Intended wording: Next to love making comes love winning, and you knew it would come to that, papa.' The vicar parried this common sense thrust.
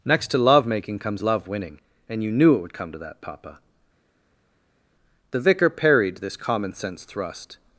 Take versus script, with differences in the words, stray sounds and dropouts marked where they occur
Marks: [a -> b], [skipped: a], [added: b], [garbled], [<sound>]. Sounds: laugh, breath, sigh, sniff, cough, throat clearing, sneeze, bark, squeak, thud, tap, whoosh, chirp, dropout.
Next to love making comes love winning, and you knew it would come to that, papa.' The vicar parried this common sense thrust.